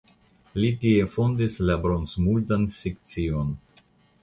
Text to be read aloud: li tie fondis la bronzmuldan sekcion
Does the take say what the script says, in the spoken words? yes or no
yes